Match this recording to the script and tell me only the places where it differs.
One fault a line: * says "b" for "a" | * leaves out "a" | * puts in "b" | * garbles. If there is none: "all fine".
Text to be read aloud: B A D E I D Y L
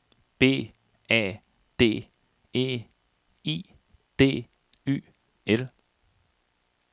all fine